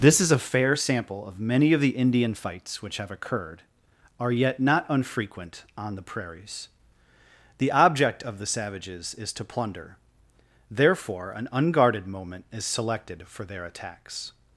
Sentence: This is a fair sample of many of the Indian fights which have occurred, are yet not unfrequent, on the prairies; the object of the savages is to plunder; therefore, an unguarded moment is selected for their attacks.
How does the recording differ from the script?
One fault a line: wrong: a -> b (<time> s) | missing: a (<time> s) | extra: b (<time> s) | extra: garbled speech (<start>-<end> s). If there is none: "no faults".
no faults